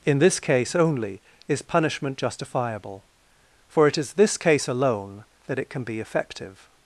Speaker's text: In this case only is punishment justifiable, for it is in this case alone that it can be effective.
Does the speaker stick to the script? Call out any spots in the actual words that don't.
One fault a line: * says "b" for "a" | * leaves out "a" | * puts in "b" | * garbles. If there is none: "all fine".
* leaves out "in"